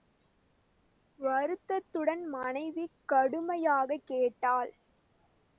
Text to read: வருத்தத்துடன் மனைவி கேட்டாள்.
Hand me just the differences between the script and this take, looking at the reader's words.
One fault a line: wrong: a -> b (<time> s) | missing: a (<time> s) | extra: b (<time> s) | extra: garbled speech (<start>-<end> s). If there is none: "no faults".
extra: கடுமையாகக் (3.0 s)